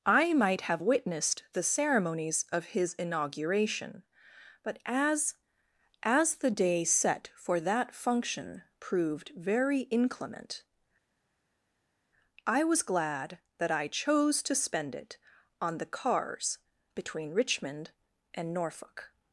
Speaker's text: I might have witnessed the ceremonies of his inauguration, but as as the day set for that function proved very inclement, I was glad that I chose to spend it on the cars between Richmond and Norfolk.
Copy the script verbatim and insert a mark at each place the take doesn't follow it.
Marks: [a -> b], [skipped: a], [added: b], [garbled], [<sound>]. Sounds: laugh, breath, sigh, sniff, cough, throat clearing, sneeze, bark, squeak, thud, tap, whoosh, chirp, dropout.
I might have witnessed the ceremonies of his inauguration, but as as the day set for that function proved very inclement, I was glad that I chose to spend it on the cars between Richmond and Norfolk.